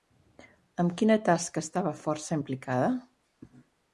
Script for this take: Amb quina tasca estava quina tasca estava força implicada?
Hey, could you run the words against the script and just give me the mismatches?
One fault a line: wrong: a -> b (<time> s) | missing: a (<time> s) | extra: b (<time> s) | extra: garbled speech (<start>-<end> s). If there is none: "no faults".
missing: quina tasca estava (1.9 s)